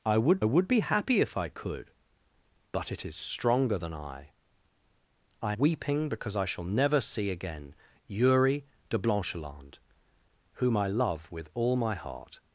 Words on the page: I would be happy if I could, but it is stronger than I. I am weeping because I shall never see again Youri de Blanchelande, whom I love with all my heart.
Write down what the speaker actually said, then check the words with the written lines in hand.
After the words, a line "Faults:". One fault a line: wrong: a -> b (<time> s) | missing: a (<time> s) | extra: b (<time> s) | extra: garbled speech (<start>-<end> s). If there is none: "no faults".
I would would be happy if I could, but it is stronger than I. I weeping because I shall never see again Youri de Blanchelande, whom I love with all my heart.
Faults:
extra: would (0.4 s)
missing: am (5.5 s)